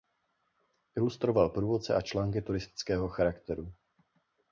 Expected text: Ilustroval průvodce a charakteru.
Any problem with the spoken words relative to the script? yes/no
yes